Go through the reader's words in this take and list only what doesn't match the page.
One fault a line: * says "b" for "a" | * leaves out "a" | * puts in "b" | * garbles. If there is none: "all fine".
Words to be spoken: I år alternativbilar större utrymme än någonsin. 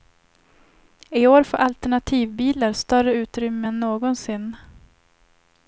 * puts in "får"